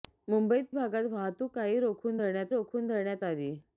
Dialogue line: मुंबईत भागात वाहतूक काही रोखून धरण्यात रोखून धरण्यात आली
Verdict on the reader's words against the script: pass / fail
pass